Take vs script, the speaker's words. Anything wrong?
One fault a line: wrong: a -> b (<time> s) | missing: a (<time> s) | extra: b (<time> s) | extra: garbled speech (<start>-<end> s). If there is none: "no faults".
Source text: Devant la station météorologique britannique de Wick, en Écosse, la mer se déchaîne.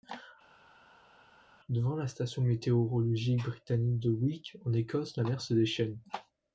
no faults